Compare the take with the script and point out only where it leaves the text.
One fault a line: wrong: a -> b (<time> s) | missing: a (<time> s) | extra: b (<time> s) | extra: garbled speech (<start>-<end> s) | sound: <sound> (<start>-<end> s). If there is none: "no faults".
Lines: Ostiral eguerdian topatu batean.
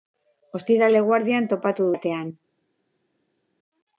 no faults